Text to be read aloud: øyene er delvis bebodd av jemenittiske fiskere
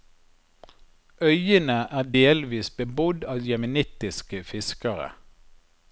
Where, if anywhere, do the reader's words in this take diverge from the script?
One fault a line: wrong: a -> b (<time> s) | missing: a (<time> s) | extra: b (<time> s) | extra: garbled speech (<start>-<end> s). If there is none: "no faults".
no faults